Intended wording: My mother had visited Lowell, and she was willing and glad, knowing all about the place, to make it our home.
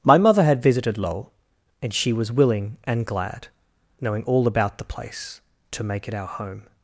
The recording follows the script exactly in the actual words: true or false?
true